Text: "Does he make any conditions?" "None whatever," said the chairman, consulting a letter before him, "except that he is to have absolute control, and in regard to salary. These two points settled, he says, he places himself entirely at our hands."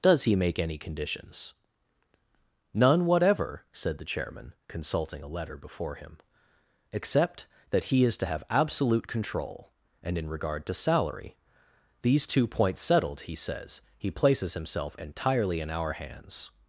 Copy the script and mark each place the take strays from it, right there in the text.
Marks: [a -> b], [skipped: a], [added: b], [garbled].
"Does he make any conditions?" "None whatever," said the chairman, consulting a letter before him, "except that he is to have absolute control, and in regard to salary. These two points settled, he says, he places himself entirely [at -> in] our hands."